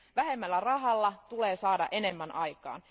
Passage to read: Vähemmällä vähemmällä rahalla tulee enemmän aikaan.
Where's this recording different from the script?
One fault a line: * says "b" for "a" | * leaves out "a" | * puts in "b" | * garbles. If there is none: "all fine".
* leaves out "vähemmällä"
* puts in "saada"